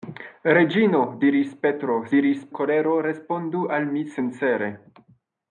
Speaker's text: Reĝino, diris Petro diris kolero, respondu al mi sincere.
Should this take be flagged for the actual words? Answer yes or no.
no